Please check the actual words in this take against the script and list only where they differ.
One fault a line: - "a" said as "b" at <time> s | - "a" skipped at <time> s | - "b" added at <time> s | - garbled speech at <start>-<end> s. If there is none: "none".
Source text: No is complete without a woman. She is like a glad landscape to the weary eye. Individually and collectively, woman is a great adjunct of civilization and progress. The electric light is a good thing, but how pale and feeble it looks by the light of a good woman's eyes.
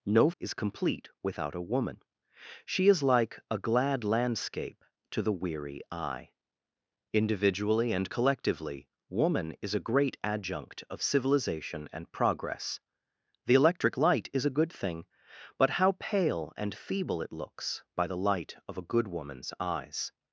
none